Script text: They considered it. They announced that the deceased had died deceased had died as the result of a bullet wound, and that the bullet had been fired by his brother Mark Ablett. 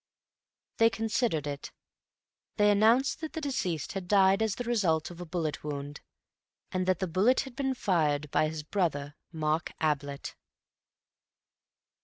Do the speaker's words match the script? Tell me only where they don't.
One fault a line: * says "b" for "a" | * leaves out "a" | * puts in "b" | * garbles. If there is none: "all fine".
* leaves out "deceased had died"